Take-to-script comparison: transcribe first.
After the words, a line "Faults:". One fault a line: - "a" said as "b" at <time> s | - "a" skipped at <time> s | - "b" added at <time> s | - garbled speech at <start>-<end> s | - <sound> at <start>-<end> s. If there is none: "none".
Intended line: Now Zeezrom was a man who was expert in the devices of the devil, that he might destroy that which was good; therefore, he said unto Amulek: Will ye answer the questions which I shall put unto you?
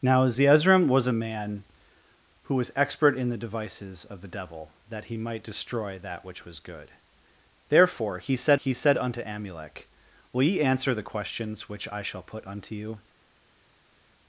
Now Zeezrom was a man who was expert in the devices of the devil, that he might destroy that which was good; therefore, he said he said unto Amulek: Will ye answer the questions which I shall put unto you?
Faults:
- "he said" added at 8.5 s